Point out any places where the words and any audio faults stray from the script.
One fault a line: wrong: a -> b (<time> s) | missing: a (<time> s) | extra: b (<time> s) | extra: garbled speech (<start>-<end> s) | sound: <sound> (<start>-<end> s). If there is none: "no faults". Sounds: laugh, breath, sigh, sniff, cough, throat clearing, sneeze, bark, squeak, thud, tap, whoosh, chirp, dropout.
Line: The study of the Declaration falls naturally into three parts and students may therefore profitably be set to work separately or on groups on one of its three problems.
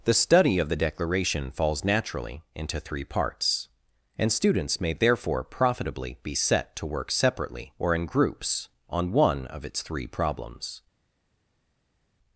wrong: on -> in (8.0 s)